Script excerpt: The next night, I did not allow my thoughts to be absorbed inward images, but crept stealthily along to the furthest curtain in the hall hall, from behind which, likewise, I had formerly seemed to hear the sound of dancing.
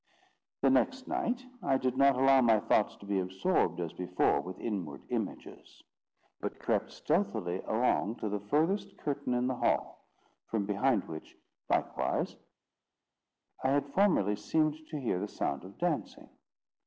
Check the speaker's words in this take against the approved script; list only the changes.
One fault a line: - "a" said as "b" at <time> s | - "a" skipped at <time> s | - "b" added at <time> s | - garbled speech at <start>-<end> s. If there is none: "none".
- "as before with" added at 3.8 s
- "hall" skipped at 10.1 s